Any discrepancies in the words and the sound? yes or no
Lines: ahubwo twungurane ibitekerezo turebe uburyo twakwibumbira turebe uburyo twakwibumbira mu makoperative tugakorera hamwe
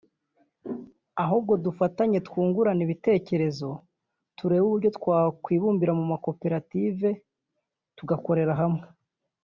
yes